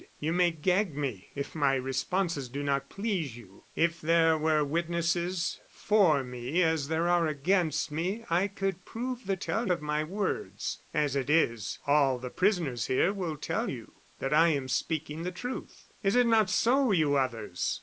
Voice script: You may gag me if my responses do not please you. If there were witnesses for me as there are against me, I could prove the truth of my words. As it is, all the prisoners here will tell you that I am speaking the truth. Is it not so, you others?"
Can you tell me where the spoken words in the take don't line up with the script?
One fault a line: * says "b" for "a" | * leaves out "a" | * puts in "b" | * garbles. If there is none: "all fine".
* says "tell" for "truth"